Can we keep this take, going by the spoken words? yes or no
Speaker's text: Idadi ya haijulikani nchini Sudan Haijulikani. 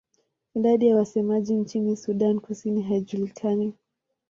no